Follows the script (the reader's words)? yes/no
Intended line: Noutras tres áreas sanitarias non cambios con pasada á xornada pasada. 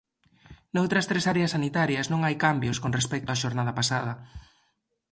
no